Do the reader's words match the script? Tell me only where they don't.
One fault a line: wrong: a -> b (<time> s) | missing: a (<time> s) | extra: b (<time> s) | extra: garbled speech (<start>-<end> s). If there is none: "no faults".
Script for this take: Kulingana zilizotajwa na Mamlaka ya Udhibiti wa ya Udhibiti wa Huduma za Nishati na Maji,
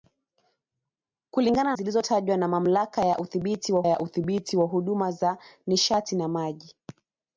no faults